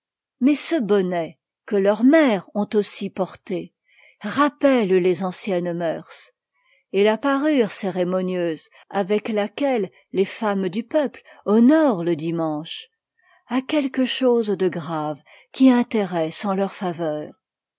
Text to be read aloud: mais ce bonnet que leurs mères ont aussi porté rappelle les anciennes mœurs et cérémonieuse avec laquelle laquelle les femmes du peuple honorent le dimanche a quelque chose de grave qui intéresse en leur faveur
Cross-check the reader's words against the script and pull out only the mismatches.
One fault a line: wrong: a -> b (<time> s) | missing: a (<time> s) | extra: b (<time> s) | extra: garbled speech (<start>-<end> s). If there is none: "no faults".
extra: la parure (7.0 s)
missing: laquelle (9.9 s)